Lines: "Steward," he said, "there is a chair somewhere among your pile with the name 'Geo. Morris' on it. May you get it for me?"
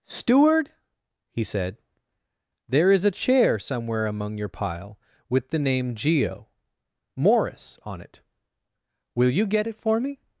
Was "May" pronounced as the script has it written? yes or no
no